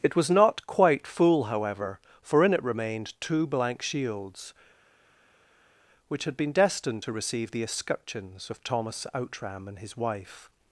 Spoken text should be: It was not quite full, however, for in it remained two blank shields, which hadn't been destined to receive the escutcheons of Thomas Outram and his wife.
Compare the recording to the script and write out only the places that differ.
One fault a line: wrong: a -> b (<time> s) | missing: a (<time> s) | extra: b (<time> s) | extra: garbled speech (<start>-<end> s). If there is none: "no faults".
wrong: hadn't -> had (6.2 s)